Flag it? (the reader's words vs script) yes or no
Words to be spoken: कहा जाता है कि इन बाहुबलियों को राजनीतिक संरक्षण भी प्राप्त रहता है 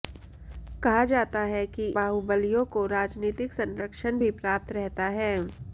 yes